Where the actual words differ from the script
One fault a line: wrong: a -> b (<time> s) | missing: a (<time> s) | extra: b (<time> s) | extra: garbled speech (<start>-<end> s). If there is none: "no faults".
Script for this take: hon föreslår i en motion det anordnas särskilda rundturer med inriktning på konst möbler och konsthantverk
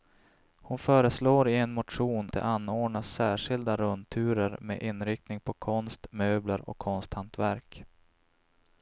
no faults